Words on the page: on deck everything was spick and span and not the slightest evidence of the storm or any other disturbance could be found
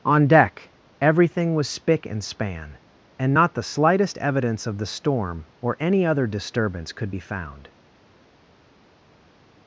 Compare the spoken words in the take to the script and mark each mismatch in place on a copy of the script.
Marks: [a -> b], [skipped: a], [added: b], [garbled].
on deck everything was spick and span and not the slightest evidence of the storm or any other disturbance could be found